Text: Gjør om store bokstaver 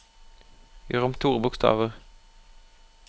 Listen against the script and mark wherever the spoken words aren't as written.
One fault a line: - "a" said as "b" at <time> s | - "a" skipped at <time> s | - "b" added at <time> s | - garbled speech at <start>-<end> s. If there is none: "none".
none